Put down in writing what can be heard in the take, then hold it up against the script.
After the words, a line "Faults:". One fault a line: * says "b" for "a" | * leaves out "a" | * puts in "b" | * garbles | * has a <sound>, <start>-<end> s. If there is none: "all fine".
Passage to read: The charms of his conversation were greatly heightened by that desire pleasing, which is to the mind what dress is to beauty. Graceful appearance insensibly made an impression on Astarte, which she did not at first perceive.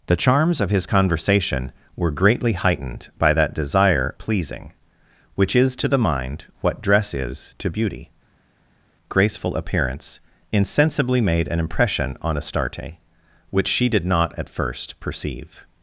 The charms of his conversation were greatly heightened by that desire pleasing, which is to the mind what dress is to beauty. Graceful appearance insensibly made an impression on Astarte, which she did not at first perceive.
Faults:
all fine